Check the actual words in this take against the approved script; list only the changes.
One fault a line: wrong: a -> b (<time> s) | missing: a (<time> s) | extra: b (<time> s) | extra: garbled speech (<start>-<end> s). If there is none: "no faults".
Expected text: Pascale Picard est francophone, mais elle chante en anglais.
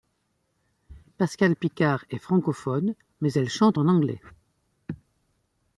no faults